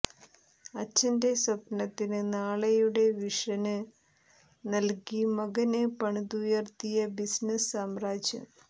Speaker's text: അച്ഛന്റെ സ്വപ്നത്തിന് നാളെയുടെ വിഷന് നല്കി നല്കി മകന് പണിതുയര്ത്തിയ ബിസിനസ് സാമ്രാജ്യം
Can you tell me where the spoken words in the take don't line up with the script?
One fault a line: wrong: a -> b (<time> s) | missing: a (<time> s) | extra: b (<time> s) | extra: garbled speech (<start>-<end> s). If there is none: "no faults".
missing: നല്കി (5.2 s)